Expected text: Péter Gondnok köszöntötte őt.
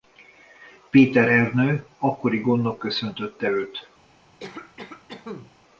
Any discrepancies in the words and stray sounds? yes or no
yes